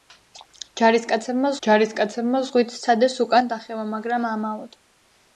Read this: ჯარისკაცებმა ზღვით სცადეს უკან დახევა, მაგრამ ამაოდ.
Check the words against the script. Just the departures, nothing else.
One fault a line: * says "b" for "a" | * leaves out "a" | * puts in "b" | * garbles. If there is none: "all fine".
* puts in "ჯარისკაცებმა"